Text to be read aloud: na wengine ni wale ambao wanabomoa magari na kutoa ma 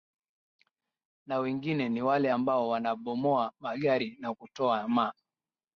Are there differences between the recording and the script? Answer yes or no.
no